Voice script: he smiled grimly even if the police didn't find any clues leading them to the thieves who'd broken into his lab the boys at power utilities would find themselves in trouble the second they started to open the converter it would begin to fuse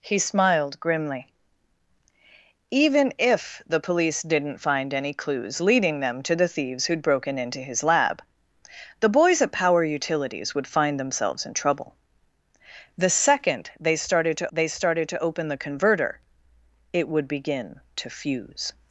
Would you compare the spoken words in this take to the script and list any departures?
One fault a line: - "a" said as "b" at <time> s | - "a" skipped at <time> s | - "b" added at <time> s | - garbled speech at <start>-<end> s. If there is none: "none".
- "they started to" added at 14.5 s